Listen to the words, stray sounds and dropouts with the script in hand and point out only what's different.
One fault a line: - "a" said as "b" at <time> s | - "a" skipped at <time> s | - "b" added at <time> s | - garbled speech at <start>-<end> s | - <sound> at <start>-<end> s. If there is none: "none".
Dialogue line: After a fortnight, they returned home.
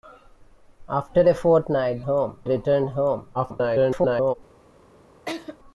- "they" said as "home" at 2.0 s
- garbled speech at 3.3-4.3 s
- laugh at 5.3-5.6 s